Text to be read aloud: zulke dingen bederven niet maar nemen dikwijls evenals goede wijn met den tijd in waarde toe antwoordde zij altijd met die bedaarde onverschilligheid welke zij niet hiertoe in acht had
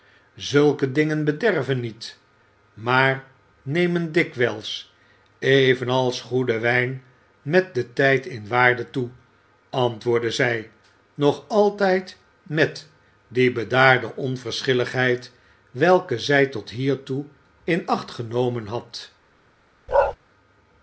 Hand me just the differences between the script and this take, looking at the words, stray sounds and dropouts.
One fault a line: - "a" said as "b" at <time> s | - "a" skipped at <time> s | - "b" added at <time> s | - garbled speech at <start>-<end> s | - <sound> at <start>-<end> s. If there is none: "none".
- "nog" added at 11.1 s
- "niet" said as "tot" at 16.5 s
- "genomen" added at 18.1 s
- bark at 19.9-20.2 s